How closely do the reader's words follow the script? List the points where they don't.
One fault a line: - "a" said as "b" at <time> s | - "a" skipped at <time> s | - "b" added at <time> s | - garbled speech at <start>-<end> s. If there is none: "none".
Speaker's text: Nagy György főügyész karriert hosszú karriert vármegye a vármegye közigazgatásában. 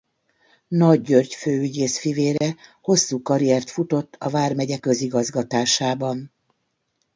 - "karriert" said as "fivére" at 2.0 s
- "vármegye" said as "futott" at 3.7 s